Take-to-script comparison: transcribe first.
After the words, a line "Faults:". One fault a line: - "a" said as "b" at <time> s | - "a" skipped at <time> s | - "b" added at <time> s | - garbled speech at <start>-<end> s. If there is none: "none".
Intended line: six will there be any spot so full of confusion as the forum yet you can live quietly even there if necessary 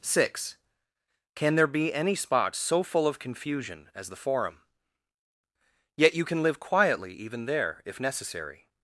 six can there be any spot so full of confusion as the forum yet you can live quietly even there if necessary
Faults:
- "will" said as "can" at 1.4 s